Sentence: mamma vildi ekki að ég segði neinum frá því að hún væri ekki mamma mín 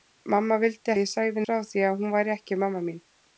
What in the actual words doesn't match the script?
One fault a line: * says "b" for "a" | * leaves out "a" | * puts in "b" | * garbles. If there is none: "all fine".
* leaves out "ekki"
* leaves out "neinum"